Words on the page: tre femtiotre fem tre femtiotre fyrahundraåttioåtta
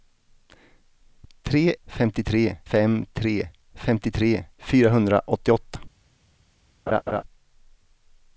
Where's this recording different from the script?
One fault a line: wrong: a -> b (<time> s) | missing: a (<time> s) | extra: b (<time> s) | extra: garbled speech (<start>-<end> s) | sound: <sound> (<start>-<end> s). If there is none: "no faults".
sound: laugh (6.9-7.2 s)